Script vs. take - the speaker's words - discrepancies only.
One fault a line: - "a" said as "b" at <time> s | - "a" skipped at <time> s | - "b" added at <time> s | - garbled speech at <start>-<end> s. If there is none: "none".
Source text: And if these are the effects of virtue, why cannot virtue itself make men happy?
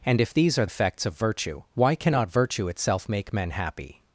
- "the" skipped at 0.7 s